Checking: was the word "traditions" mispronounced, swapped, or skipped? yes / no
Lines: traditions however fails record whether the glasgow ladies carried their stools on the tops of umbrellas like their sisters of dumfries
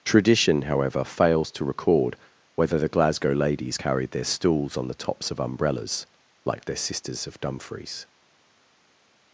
yes